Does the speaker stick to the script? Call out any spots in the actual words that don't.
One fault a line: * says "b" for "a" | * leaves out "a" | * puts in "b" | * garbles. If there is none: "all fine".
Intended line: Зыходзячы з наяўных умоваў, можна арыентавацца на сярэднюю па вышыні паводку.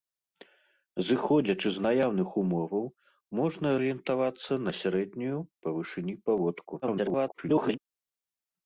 * garbles